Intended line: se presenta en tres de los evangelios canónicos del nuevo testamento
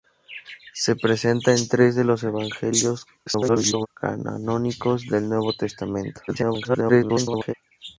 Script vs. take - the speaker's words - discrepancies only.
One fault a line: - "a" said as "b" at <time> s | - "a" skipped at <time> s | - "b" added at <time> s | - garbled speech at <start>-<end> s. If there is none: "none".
- garbled speech at 3.3-3.9 s
- garbled speech at 6.3-7.5 s